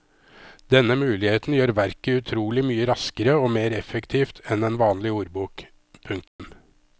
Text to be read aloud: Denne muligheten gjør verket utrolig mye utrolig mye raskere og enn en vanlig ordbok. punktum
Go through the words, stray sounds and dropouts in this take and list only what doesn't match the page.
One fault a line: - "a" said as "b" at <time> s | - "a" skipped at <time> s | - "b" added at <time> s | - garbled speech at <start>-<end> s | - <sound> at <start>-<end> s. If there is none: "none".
- "utrolig mye raskere og" said as "raskere og mer effektivt" at 2.9 s
- dropout at 6.3-6.4 s